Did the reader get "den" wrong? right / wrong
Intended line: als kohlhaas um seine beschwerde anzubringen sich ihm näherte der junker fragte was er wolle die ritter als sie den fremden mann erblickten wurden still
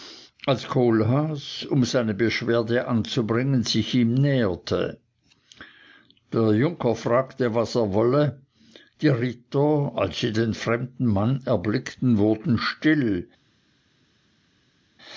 right